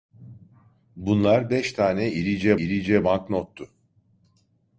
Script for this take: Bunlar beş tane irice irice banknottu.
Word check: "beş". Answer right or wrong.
right